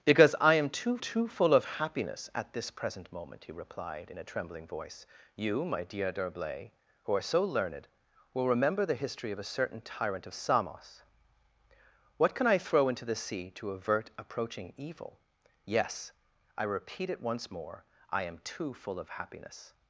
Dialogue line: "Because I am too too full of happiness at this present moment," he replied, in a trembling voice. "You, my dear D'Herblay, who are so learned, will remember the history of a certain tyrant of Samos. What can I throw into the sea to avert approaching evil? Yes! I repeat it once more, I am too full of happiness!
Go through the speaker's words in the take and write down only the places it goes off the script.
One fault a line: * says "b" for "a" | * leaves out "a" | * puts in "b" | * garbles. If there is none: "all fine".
all fine